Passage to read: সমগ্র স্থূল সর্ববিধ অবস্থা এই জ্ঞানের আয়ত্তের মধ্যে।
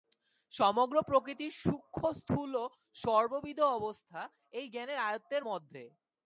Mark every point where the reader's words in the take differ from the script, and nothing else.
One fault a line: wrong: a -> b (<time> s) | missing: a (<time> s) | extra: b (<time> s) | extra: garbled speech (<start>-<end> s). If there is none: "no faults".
extra: প্রকৃতির সূক্ষ্ম (1.0 s)